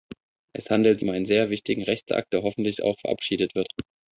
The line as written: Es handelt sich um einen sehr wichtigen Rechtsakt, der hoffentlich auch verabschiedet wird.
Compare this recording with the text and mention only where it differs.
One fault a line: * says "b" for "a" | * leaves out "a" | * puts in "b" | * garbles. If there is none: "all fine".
* leaves out "sich"